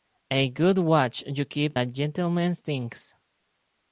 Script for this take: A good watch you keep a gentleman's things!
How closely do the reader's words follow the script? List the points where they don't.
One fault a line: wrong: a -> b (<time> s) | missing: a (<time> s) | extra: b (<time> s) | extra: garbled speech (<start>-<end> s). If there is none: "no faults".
no faults